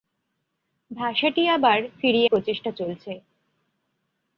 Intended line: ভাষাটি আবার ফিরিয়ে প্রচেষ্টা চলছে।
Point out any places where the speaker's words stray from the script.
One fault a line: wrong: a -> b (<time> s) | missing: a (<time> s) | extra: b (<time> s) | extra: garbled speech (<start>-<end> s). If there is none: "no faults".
no faults